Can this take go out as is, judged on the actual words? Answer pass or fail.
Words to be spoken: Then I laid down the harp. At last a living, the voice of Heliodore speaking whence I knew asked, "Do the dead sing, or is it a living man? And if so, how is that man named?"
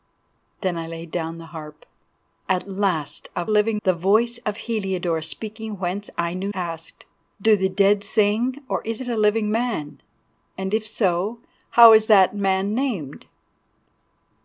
pass